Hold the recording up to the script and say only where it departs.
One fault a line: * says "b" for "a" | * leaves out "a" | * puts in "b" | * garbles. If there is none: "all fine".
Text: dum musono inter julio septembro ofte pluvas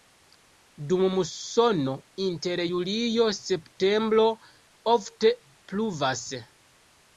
all fine